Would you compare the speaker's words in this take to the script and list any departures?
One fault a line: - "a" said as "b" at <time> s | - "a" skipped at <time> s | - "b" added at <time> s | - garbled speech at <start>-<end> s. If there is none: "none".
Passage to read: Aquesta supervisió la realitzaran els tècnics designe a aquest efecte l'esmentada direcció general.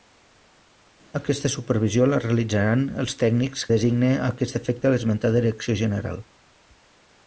none